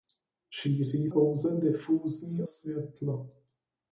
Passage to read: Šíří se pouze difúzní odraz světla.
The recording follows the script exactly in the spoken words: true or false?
false